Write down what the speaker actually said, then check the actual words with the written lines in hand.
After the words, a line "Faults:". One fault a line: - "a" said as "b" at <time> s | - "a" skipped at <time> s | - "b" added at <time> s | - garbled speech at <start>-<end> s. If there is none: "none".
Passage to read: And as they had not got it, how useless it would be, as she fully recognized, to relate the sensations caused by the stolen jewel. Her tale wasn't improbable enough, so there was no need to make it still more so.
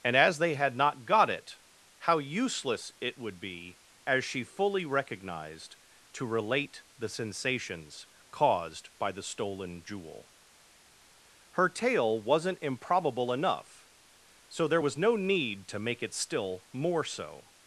And as they had not got it, how useless it would be, as she fully recognized, to relate the sensations caused by the stolen jewel. Her tale wasn't improbable enough, so there was no need to make it still more so.
Faults:
none